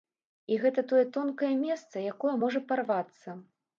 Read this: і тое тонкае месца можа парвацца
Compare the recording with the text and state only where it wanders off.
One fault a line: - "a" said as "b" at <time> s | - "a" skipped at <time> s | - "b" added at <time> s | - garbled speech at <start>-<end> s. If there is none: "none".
- "гэта" added at 0.6 s
- "якое" added at 2.1 s